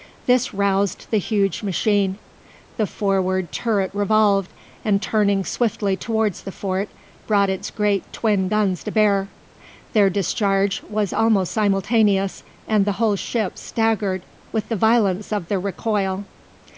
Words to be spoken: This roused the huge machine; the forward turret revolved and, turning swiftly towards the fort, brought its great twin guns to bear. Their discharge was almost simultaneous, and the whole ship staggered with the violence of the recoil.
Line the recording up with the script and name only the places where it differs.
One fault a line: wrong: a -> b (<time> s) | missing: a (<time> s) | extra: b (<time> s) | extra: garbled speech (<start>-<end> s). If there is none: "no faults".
no faults